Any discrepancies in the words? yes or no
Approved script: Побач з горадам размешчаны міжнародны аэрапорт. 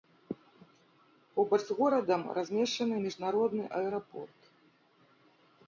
no